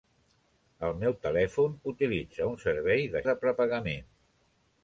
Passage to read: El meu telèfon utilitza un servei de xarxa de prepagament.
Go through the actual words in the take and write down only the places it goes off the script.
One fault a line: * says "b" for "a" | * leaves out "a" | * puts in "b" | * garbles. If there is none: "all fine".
* leaves out "xarxa"